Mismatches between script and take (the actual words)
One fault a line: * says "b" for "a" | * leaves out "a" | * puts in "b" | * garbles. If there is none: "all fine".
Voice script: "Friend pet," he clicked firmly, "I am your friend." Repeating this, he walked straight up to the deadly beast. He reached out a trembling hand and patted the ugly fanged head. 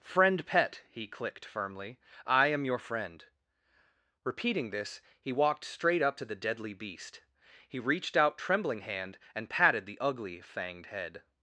* leaves out "a"